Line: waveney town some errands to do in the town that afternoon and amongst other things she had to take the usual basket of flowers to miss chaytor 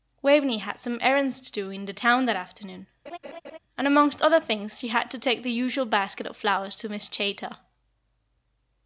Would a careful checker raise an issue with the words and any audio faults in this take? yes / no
yes